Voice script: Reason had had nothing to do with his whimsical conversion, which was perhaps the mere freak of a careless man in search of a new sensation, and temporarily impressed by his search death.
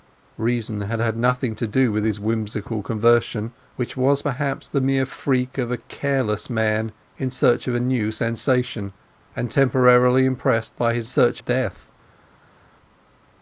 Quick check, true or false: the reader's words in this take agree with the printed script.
true